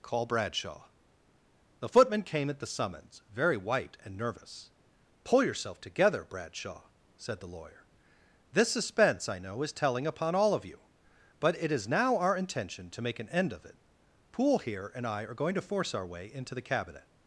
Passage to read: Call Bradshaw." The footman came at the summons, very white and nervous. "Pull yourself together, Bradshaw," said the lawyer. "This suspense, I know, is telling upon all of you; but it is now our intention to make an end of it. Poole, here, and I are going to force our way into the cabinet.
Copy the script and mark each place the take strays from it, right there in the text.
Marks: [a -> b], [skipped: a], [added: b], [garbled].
Call Bradshaw." The footman came at the summons, very white and nervous. "Pull yourself together, Bradshaw," said the lawyer. "This suspense, I know, is telling upon all of you; but it is now our intention to make an end of it. Poole, here, and I are going to force our way into the cabinet.